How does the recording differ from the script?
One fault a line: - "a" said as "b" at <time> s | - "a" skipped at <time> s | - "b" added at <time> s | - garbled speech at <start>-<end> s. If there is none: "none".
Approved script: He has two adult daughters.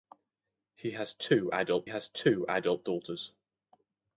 - "has two adult" added at 1.9 s